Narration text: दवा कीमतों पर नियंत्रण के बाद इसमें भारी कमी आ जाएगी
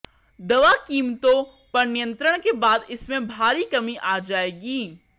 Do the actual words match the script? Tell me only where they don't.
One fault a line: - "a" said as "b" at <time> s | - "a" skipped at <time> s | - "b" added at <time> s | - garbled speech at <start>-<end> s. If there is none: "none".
none